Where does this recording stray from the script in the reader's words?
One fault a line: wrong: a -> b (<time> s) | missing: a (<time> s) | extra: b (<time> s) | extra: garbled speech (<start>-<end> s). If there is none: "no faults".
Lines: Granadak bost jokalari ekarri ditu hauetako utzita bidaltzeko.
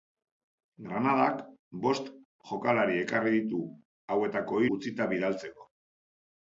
no faults